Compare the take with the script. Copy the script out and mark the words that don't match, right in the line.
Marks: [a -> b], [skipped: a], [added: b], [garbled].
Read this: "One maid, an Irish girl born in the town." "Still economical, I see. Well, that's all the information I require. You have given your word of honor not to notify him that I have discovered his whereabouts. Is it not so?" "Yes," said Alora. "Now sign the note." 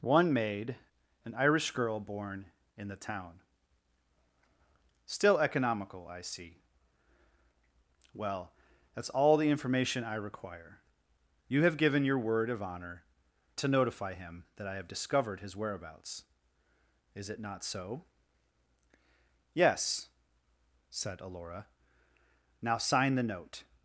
"One maid, an Irish girl born in the town." "Still economical, I see. Well, that's all the information I require. You have given your word of honor [skipped: not] to notify him that I have discovered his whereabouts. Is it not so?" "Yes," said Alora. "Now sign the note."